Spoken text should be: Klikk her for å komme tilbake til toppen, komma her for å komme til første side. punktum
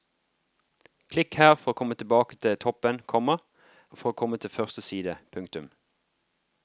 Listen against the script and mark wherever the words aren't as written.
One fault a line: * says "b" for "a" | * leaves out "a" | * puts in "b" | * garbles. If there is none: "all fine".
* leaves out "her"